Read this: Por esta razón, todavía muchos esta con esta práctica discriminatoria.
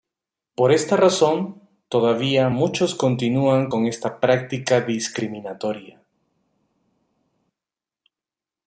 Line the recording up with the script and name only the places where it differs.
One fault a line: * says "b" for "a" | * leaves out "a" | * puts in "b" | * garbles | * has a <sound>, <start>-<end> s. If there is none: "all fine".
* says "continúan" for "esta"